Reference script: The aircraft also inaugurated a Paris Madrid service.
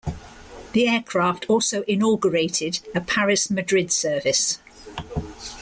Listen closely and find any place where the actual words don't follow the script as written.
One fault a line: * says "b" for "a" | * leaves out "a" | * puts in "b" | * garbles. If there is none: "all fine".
all fine